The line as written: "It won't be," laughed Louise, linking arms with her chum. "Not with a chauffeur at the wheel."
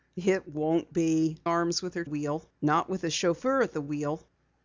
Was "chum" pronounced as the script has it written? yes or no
no